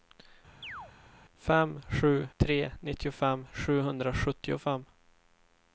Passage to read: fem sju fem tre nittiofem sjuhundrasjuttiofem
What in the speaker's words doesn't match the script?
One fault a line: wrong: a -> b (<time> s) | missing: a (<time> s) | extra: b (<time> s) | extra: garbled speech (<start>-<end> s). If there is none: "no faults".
missing: fem (2.3 s)